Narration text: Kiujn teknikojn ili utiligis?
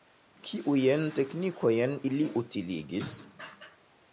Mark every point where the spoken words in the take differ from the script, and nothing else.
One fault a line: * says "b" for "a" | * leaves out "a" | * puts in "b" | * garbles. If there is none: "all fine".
all fine